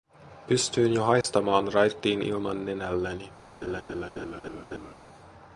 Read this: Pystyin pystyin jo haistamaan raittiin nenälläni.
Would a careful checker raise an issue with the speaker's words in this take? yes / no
yes